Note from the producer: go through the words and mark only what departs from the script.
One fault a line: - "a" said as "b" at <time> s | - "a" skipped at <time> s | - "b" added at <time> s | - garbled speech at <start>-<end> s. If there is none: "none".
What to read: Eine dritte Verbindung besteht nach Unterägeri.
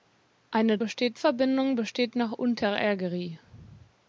- "dritte" said as "besteht" at 0.8 s